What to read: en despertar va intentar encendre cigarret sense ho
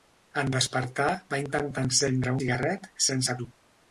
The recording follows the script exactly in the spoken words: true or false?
true